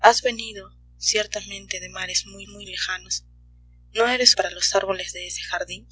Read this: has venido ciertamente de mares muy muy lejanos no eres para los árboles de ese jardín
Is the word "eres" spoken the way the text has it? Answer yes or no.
yes